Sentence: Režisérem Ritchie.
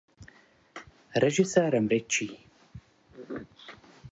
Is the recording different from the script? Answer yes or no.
no